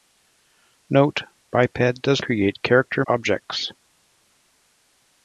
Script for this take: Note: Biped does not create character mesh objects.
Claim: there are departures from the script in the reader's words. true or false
true